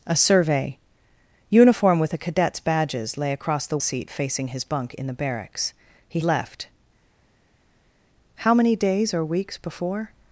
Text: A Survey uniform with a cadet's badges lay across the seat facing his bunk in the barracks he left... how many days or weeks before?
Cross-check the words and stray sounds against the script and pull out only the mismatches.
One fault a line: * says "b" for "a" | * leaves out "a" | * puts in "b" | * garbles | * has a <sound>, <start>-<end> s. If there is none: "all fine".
all fine